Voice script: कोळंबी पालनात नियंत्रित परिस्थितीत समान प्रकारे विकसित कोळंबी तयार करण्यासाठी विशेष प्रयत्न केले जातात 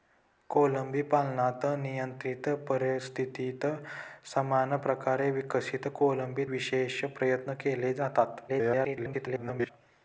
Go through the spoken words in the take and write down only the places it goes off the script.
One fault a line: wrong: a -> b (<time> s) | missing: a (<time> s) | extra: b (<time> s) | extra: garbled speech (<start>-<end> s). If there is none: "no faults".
missing: तयार करण्यासाठी (6.5 s)
extra: garbled speech (8.5-9.7 s)